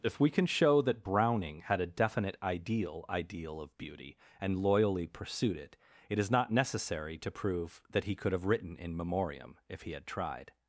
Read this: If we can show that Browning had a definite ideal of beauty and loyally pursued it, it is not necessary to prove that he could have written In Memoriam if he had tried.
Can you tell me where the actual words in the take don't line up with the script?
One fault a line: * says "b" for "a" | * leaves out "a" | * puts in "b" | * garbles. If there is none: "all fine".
* puts in "ideal"